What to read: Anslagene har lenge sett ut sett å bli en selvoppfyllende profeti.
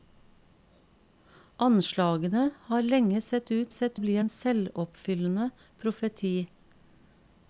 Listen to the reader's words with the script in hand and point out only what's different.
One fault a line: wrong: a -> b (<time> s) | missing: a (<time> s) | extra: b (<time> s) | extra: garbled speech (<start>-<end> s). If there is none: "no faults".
no faults